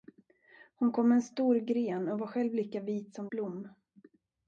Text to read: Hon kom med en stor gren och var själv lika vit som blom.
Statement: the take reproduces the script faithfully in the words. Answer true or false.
true